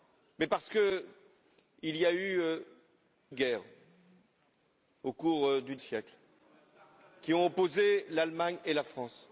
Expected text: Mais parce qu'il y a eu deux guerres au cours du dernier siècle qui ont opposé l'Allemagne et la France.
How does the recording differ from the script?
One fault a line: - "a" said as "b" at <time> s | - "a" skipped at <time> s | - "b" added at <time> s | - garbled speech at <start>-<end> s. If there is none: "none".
- "deux" skipped at 2.4 s
- "dernier" skipped at 5.8 s